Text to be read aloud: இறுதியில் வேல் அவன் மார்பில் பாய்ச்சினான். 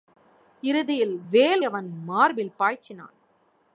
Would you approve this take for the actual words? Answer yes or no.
yes